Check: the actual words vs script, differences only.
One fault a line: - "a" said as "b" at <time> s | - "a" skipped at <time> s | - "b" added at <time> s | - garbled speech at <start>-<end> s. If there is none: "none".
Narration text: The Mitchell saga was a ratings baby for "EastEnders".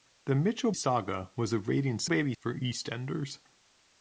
none